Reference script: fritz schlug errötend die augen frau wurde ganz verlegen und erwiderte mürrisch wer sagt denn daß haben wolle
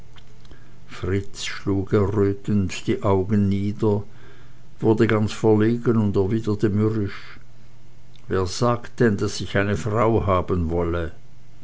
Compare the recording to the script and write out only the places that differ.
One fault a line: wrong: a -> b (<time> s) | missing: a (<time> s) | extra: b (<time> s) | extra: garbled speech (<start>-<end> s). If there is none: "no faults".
wrong: frau -> nieder (3.5 s)
extra: ich eine frau (9.4 s)